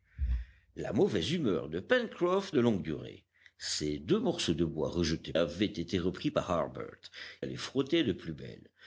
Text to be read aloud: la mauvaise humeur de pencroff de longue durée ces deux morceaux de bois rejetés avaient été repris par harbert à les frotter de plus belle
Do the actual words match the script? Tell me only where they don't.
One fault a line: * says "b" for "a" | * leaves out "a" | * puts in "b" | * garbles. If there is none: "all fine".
all fine